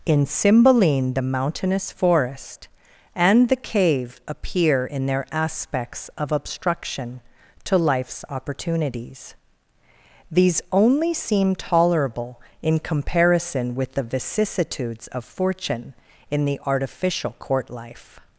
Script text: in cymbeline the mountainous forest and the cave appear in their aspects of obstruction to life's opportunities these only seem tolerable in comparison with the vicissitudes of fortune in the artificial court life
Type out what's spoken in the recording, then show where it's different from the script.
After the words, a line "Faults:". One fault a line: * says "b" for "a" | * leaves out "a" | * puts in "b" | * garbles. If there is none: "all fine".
in cymbeline the mountainous forest and the cave appear in their aspects of obstruction to life's opportunities these only seem tolerable in comparison with the vicissitudes of fortune in the artificial court life
Faults:
all fine